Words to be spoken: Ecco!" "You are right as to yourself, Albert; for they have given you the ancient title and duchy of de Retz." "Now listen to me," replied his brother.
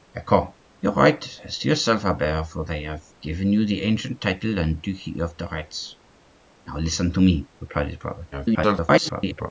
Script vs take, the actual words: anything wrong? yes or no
yes